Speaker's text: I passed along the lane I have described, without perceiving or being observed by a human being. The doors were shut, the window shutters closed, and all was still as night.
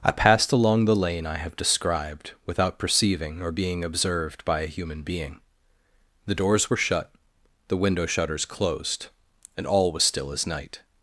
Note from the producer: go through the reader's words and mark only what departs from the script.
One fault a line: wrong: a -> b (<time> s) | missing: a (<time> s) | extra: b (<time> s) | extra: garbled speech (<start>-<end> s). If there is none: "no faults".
no faults